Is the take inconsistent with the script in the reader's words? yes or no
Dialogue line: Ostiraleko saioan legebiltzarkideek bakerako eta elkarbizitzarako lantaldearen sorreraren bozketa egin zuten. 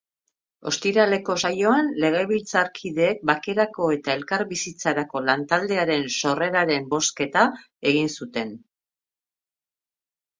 no